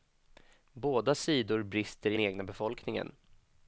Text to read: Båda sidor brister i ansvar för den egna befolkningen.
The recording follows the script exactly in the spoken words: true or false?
false